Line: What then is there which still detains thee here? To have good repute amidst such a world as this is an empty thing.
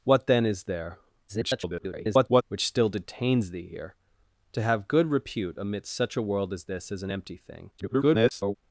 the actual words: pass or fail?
fail